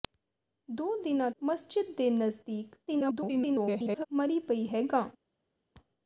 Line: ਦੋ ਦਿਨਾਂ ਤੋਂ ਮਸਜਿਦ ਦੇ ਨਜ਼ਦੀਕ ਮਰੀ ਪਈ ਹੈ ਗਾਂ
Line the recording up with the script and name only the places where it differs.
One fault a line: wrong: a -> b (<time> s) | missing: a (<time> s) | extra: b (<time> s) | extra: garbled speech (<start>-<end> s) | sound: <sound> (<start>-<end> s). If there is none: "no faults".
missing: ਤੋਂ (1.3 s)
extra: garbled speech (2.9-4.1 s)